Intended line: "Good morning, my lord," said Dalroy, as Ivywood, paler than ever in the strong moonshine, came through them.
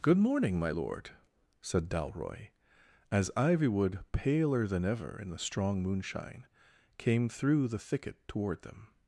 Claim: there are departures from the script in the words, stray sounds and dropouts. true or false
true